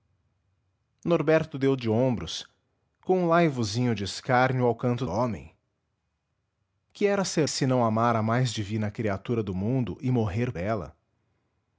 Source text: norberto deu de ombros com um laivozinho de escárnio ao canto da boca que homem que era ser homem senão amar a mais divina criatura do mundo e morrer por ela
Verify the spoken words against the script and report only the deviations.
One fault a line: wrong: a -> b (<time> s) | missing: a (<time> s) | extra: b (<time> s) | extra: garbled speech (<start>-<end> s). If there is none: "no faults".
missing: da boca que (5.0 s)
missing: homem (7.5 s)
missing: por (10.5 s)